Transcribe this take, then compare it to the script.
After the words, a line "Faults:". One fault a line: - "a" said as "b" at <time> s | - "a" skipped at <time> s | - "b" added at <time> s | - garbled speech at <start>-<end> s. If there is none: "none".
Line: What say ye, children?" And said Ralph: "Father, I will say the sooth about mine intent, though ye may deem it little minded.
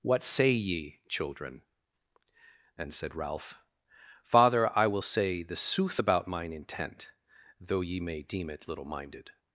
What say ye, children?" And said Ralph: "Father, I will say the sooth about mine intent, though ye may deem it little minded.
Faults:
none